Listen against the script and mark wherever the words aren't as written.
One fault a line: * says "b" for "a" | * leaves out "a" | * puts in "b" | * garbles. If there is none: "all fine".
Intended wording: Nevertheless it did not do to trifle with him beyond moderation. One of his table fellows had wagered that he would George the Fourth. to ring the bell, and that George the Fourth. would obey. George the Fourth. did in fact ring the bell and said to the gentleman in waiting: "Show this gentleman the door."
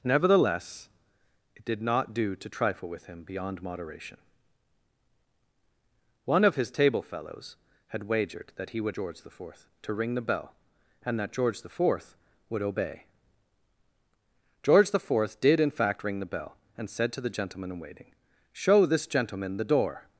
all fine